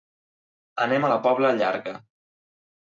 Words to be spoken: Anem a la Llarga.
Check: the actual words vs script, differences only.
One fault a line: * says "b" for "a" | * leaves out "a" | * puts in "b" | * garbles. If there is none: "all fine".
* puts in "Pobla"